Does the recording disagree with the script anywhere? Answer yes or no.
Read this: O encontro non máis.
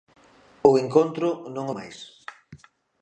no